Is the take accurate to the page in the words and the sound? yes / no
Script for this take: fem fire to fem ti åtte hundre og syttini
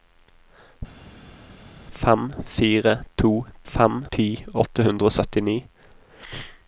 yes